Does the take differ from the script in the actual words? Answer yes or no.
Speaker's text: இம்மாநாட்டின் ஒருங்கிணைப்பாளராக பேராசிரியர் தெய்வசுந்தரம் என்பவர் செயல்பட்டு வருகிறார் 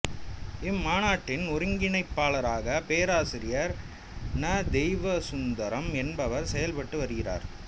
yes